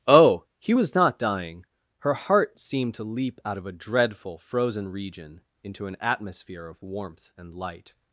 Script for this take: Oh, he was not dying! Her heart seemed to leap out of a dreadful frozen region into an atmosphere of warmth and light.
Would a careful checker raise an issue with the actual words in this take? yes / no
no